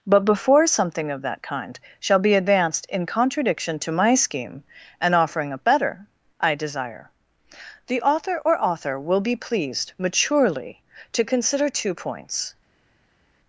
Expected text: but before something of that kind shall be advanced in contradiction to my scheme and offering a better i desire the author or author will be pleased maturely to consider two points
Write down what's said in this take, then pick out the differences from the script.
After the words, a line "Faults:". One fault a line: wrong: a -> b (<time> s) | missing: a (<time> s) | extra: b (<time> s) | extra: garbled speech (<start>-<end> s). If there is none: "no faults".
but before something of that kind shall be advanced in contradiction to my scheme and offering a better i desire the author or author will be pleased maturely to consider two points
Faults:
no faults